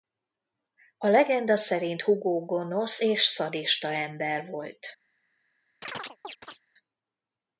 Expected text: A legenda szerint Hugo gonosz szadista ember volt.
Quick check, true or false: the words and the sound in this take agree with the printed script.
false